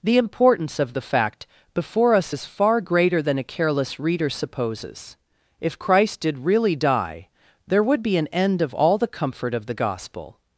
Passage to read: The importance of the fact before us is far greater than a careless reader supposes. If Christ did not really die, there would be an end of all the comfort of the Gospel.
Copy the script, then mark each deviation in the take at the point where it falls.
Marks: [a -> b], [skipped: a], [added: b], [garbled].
The importance of the fact before us is far greater than a careless reader supposes. If Christ did [skipped: not] really die, there would be an end of all the comfort of the Gospel.